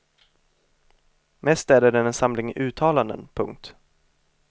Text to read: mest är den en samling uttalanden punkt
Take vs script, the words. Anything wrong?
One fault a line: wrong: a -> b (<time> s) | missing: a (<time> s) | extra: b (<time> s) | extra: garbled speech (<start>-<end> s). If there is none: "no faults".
no faults